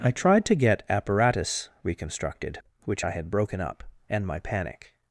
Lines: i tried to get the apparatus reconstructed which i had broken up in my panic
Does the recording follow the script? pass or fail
fail